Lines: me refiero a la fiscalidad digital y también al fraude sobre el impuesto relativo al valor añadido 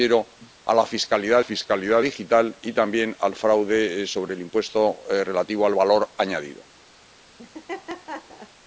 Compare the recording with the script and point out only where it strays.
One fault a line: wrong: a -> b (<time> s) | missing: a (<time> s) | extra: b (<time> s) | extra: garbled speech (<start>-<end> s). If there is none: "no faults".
extra: fiscalidad (1.4 s)